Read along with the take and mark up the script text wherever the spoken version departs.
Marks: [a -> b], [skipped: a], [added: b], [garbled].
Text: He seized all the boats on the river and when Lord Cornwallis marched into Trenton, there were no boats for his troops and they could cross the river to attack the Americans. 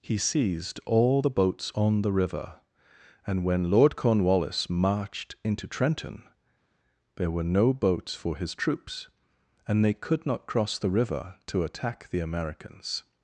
He seized all the boats on the river and when Lord Cornwallis marched into Trenton, there were no boats for his troops and they could [added: not] cross the river to attack the Americans.